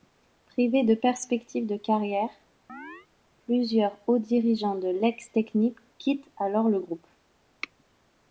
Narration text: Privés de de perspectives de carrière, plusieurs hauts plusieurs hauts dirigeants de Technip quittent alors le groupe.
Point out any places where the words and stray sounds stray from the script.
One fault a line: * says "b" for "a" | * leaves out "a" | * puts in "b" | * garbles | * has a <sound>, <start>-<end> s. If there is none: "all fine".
* leaves out "de"
* has a chirp, 2.7-3.1 s
* leaves out "plusieurs hauts"
* puts in "l'ex"